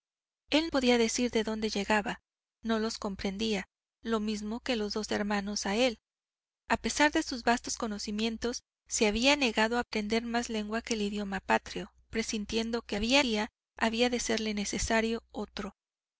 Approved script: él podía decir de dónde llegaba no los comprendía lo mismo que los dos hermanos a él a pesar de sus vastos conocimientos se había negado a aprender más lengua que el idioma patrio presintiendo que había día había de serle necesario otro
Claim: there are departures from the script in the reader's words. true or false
false